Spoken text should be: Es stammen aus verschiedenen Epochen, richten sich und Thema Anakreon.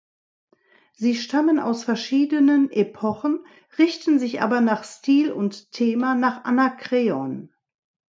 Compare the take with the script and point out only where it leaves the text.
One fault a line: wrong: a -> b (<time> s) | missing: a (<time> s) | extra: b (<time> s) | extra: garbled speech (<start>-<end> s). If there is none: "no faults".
wrong: Es -> Sie (0.9 s)
extra: aber nach Stil (4.4 s)
extra: nach (6.1 s)